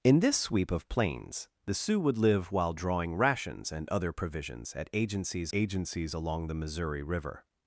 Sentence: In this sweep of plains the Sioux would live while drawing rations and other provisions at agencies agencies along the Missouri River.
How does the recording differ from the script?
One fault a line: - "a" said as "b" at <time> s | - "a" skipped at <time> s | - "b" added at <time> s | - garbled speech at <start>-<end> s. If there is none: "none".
none